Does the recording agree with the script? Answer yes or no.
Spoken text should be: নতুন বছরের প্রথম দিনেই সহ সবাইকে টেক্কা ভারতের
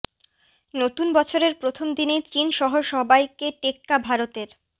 no